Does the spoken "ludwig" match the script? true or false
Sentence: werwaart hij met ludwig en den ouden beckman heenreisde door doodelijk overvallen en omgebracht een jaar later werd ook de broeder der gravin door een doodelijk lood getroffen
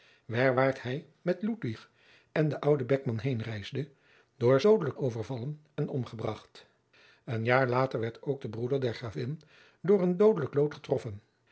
true